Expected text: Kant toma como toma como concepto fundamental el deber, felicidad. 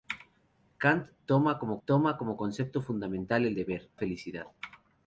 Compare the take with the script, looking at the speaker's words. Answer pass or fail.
pass